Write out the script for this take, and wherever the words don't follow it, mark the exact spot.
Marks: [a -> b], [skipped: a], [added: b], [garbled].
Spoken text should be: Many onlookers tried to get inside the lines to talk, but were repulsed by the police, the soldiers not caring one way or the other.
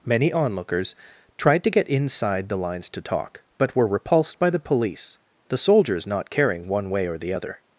Many onlookers tried to get inside the lines to talk, but were repulsed by the police, the soldiers not caring one way or the other.